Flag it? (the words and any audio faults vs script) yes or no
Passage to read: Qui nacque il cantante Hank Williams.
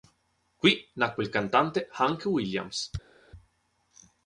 no